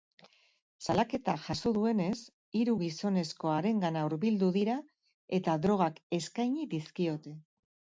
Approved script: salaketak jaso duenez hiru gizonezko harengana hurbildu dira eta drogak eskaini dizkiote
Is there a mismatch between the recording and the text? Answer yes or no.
no